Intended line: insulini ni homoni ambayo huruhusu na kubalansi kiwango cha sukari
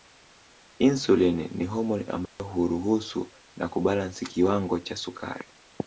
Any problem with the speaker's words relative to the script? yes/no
no